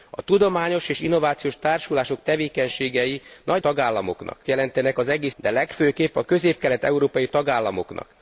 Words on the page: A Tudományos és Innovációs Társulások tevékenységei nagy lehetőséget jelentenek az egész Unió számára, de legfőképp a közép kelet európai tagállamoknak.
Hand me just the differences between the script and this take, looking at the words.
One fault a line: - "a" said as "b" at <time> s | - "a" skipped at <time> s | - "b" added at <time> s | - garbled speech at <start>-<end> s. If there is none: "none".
- "lehetőséget" said as "tagállamoknak" at 3.6 s
- "Unió számára" skipped at 5.4 s